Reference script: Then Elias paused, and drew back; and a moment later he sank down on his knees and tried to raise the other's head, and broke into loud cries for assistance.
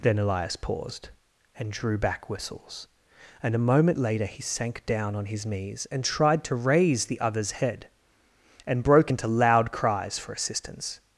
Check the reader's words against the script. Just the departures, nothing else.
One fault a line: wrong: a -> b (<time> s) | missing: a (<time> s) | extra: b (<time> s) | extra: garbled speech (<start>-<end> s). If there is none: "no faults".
extra: whistles (2.3 s)